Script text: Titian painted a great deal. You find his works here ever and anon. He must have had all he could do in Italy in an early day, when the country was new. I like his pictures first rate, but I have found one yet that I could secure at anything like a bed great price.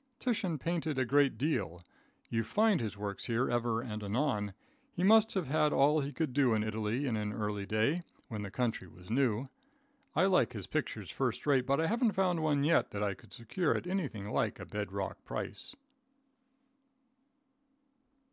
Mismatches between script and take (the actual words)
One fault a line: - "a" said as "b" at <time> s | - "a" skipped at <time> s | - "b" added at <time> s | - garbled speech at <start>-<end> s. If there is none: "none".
- "have" said as "haven't" at 11.9 s
- "great" said as "rock" at 14.9 s